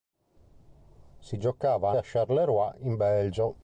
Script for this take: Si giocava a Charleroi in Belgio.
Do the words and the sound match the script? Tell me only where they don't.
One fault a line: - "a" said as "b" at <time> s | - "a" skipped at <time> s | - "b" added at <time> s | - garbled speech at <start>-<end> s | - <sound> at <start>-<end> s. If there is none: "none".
none